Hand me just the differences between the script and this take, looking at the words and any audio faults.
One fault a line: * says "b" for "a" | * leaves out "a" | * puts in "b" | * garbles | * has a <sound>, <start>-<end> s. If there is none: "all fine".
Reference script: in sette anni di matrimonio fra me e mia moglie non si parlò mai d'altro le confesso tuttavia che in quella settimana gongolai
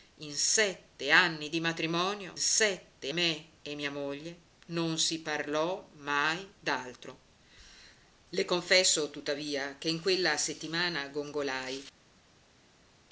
* says "sette" for "fra"